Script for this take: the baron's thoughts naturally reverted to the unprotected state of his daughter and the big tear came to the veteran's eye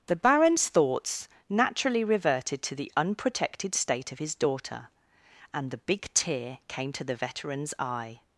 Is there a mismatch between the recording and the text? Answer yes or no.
no